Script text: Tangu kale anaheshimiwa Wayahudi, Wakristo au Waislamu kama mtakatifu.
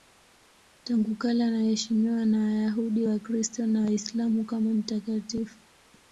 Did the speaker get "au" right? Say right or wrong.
wrong